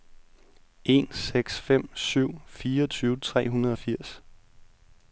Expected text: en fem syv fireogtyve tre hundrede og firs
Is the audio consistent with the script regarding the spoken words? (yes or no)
no